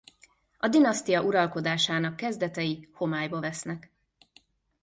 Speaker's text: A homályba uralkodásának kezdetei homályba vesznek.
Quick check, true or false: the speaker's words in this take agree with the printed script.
false